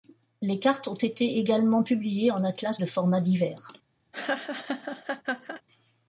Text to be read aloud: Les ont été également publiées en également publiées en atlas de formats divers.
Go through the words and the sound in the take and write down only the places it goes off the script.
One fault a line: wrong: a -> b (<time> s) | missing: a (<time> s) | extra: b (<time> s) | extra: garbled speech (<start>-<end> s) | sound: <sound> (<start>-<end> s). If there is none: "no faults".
extra: cartes (0.6 s)
missing: également publiées en (2.4 s)
sound: laugh (4.1-5.6 s)